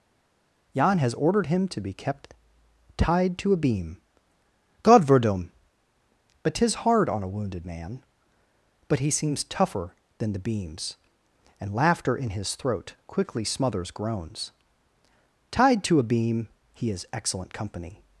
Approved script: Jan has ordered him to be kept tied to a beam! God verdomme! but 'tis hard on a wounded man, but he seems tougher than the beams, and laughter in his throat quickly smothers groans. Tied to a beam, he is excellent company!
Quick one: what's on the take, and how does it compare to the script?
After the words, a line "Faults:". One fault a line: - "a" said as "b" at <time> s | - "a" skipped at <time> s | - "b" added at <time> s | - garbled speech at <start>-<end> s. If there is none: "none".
Jan has ordered him to be kept tied to a beam! God verdomme! but 'tis hard on a wounded man, but he seems tougher than the beams, and laughter in his throat quickly smothers groans. Tied to a beam, he is excellent company!
Faults:
none